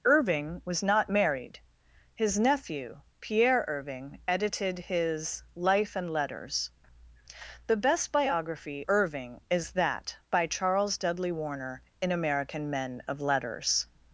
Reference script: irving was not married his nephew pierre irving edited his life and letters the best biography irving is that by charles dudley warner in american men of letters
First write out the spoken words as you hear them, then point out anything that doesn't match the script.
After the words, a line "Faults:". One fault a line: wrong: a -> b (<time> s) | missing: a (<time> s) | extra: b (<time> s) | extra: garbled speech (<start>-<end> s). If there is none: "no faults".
irving was not married his nephew pierre irving edited his life and letters the best biography irving is that by charles dudley warner in american men of letters
Faults:
no faults